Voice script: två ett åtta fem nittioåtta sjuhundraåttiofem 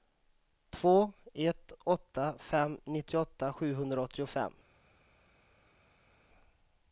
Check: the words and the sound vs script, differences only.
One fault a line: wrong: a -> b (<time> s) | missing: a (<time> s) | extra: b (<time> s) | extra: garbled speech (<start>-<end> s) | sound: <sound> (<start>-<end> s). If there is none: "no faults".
no faults